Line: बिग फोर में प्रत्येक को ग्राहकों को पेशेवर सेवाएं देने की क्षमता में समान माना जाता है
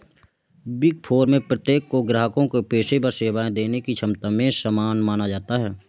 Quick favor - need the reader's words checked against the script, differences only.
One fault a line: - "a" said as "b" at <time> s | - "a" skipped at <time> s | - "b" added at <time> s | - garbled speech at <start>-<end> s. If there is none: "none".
none